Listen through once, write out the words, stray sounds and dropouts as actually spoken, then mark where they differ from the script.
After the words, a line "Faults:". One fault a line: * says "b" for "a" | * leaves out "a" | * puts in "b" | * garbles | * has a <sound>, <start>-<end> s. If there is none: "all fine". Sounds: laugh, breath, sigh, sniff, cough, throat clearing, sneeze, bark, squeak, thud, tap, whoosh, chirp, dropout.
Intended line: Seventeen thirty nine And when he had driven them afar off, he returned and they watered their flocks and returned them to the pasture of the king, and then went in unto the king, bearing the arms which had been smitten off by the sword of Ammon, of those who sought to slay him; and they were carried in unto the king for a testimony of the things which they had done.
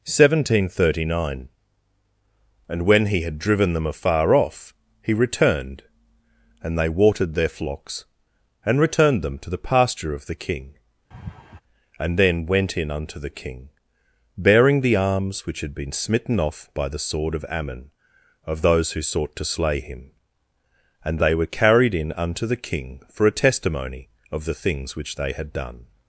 Seventeen thirty nine And when he had driven them afar off, he returned and they watered their flocks and returned them to the pasture of the king, and then went in unto the king, bearing the arms which had been smitten off by the sword of Ammon, of those who sought to slay him; and they were carried in unto the king for a testimony of the things which they had done.
Faults:
* has a laugh, 11.1-11.6 s